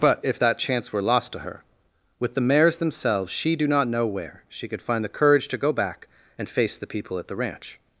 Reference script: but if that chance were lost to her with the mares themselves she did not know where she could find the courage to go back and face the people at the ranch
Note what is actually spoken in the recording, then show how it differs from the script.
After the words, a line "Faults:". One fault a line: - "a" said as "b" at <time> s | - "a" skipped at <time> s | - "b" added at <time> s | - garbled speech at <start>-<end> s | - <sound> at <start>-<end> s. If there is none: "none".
but if that chance were lost to her with the mares themselves she do not know where she could find the courage to go back and face the people at the ranch
Faults:
- "did" said as "do" at 3.5 s